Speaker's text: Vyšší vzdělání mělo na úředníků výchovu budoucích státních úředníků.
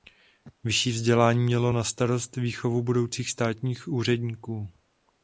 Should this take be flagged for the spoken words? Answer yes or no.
yes